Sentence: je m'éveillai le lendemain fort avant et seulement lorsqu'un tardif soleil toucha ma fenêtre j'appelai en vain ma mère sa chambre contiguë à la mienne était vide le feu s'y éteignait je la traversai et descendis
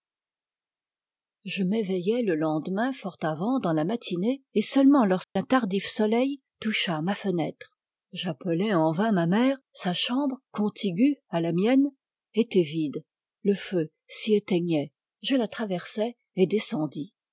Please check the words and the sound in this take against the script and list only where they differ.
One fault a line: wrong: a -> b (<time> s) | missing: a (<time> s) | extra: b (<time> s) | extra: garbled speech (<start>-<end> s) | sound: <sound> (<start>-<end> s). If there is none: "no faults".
extra: dans la matinée (3.6 s)
sound: dropout (5.2-5.4 s)